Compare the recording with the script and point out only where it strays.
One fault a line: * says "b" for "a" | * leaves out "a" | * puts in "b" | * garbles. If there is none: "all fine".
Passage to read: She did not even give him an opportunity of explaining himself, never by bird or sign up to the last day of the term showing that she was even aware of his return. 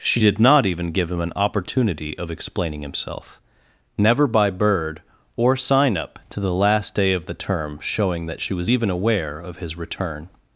all fine